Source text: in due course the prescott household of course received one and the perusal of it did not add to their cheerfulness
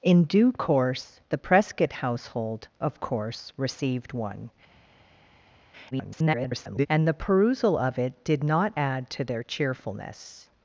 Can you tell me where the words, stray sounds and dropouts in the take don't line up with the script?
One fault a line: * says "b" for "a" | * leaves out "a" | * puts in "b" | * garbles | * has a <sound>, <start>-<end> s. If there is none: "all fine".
* garbles